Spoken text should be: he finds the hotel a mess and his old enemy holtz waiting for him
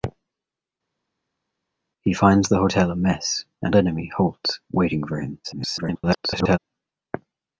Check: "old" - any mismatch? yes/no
yes